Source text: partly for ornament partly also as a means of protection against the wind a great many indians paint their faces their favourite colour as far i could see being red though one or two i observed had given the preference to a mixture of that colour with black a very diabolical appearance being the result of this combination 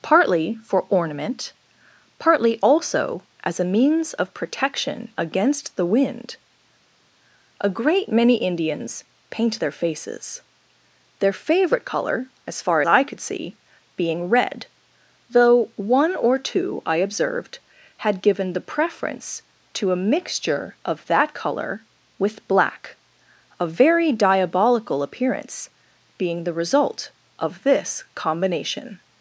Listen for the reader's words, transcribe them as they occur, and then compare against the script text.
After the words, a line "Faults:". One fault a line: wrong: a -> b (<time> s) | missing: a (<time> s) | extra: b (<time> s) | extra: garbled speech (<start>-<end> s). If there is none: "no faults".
partly for ornament partly also as a means of protection against the wind a great many indians paint their faces their favourite colour as far i could see being red though one or two i observed had given the preference to a mixture of that colour with black a very diabolical appearance being the result of this combination
Faults:
no faults